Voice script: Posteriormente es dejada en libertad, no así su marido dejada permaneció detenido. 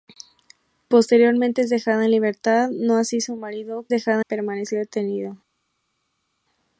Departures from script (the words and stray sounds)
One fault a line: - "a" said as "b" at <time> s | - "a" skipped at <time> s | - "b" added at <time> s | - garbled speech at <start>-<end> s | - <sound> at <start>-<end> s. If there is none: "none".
none